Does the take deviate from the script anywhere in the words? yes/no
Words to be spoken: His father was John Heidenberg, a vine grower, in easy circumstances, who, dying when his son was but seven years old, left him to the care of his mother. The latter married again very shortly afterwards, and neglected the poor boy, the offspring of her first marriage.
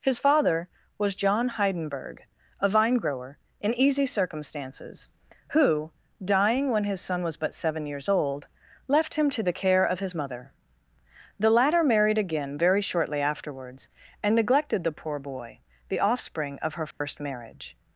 no